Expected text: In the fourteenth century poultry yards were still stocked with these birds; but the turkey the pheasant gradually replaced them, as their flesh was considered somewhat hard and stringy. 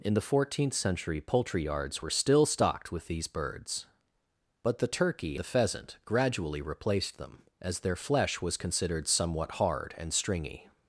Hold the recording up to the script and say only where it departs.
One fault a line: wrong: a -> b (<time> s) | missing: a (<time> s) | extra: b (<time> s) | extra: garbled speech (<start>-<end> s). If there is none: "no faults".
no faults